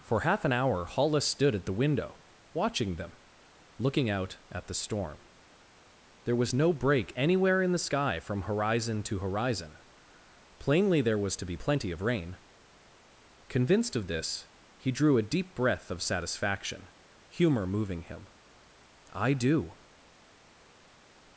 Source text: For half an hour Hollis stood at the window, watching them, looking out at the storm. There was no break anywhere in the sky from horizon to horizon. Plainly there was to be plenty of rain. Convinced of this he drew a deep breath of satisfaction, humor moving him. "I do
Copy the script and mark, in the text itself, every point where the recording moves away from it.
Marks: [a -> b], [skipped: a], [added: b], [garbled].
For half an hour Hollis stood at the window, watching them, looking out at the storm. There was no break anywhere in the sky from horizon to horizon. Plainly there was to be plenty of rain. Convinced of this he drew a deep breath of satisfaction, humor moving him. "I do